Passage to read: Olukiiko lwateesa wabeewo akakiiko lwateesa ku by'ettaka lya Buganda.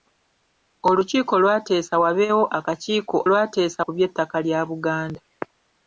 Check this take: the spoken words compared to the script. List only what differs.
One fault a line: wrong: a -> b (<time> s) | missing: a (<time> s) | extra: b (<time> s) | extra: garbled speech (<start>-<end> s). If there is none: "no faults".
no faults